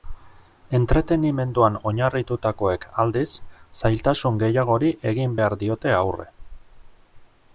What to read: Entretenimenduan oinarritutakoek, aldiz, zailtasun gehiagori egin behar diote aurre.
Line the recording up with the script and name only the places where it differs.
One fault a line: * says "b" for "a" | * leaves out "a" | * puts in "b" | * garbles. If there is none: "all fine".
all fine